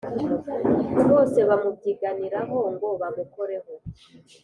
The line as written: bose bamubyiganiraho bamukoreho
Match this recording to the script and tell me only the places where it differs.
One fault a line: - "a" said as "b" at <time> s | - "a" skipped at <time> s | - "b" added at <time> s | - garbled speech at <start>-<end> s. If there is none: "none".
- "ngo" added at 2.7 s